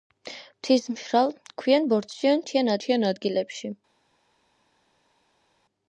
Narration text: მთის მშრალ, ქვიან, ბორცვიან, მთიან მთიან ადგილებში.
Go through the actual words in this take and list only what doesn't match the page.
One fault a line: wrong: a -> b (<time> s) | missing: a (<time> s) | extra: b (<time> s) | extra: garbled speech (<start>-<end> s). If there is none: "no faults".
no faults